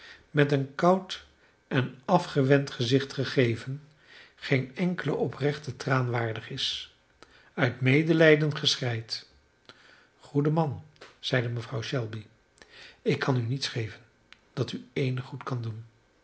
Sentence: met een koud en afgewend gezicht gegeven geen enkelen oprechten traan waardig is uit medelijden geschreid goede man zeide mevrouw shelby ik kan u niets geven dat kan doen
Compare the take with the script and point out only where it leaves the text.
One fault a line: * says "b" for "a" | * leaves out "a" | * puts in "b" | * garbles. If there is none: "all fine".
* puts in "u eenig goed"